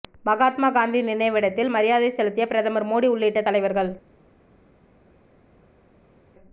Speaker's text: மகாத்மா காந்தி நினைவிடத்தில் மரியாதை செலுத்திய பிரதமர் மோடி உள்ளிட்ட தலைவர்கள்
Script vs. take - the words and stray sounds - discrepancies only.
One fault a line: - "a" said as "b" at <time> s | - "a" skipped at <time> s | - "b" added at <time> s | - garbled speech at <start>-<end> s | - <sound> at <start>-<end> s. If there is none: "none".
none